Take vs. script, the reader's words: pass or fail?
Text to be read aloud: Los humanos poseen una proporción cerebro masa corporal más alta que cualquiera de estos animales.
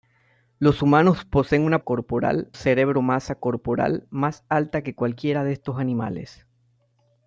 fail